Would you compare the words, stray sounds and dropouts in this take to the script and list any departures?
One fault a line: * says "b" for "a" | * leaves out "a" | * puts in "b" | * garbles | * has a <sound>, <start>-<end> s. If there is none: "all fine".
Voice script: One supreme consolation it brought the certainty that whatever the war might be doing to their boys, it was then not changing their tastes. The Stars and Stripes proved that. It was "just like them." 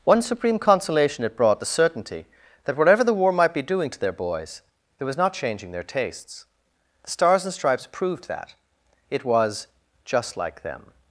* leaves out "then"